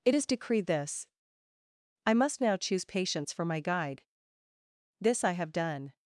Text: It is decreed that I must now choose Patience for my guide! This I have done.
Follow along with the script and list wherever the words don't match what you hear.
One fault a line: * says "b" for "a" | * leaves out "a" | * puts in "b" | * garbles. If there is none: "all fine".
* says "this" for "that"